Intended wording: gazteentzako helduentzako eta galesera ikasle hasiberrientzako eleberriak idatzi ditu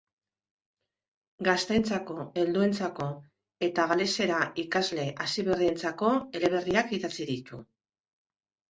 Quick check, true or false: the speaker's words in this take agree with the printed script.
true